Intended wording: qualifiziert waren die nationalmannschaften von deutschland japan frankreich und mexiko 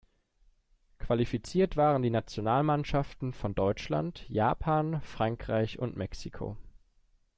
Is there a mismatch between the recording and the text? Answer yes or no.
no